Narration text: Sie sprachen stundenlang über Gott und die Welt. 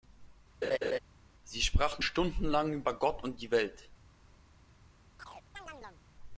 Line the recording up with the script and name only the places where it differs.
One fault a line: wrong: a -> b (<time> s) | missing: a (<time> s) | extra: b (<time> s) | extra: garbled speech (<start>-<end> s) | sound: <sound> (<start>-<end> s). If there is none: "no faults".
sound: laugh (0.6-1.0 s)
sound: chirp (5.2-6.0 s)